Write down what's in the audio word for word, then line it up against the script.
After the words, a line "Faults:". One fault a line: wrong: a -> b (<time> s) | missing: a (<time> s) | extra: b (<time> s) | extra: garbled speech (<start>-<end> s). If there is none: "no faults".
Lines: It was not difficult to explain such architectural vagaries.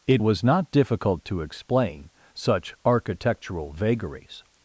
It was not difficult to explain such architectural vagaries.
Faults:
no faults